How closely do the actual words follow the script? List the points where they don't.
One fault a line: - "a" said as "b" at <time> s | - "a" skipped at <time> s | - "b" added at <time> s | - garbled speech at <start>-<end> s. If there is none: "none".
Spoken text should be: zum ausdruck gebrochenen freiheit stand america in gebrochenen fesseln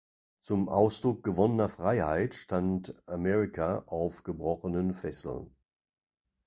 - "gebrochenen" said as "gewonnener" at 1.2 s
- "in" said as "auf" at 3.9 s